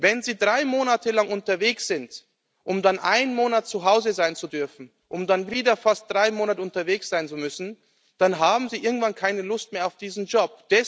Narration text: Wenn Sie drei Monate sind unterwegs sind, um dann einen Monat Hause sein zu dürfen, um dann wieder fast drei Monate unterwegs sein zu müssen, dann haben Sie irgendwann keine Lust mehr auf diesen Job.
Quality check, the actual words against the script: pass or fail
fail